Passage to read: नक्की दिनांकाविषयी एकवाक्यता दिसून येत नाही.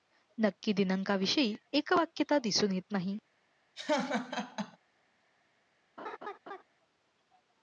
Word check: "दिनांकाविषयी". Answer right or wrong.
right